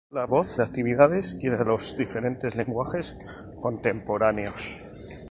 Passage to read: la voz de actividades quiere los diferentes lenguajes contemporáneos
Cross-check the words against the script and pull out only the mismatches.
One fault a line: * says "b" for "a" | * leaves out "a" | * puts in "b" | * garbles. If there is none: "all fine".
all fine